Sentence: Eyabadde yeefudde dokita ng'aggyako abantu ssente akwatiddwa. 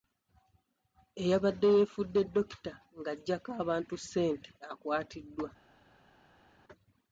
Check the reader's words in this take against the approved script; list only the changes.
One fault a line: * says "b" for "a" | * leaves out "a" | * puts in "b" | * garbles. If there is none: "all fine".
all fine